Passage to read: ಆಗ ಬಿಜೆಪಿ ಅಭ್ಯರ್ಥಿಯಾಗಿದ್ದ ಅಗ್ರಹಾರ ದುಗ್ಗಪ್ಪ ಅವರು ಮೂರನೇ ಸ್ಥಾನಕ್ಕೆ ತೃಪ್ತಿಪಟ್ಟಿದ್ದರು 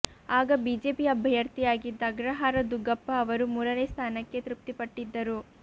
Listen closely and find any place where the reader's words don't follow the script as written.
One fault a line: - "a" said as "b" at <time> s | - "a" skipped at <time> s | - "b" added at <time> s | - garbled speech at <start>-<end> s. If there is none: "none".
none